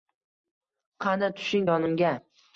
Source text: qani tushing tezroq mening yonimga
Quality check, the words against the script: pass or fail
fail